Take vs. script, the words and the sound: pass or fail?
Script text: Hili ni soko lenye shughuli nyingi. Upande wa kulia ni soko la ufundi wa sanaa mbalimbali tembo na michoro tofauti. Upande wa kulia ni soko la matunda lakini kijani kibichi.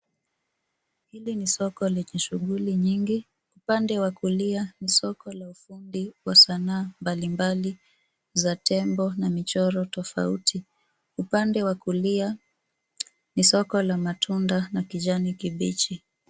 fail